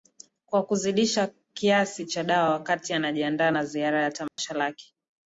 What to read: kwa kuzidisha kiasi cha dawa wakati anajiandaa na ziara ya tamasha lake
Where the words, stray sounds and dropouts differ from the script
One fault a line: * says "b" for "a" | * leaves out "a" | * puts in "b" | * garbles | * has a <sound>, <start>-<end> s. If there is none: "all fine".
* has a dropout, 4.3-4.4 s